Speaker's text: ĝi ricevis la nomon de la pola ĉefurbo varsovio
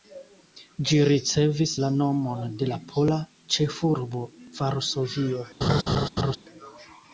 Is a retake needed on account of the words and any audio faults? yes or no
yes